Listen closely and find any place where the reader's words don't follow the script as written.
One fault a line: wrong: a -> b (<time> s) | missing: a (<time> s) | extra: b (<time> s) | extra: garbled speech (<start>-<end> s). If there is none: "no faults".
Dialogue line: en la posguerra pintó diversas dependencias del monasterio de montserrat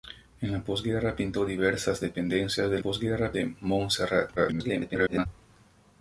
wrong: monasterio -> posguerra (2.8 s)
extra: garbled speech (4.4-5.3 s)